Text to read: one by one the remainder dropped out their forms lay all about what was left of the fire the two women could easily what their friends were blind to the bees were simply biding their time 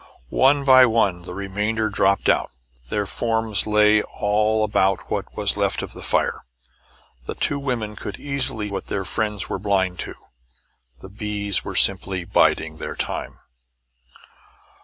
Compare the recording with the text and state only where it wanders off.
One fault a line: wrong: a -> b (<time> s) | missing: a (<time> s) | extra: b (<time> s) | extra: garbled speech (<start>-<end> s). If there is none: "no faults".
no faults